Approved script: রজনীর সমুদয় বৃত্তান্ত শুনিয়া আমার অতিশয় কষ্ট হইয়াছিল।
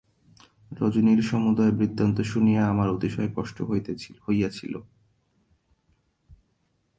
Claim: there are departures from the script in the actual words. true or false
false